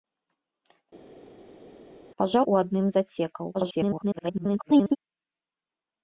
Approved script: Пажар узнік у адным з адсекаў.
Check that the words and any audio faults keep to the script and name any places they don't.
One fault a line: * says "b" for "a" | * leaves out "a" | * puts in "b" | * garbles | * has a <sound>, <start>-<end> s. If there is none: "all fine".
* leaves out "узнік"
* garbles